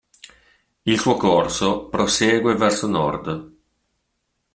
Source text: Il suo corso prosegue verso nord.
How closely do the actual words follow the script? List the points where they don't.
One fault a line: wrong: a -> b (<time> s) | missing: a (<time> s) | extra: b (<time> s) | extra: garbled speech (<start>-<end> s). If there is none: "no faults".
no faults